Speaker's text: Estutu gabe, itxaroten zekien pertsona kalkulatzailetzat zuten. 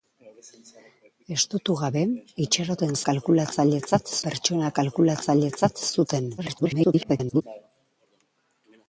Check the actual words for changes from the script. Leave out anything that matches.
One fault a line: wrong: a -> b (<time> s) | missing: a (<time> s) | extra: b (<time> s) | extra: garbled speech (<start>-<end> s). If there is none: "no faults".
wrong: zekien -> kalkulatzailetzat (3.1 s)
extra: garbled speech (6.4-7.4 s)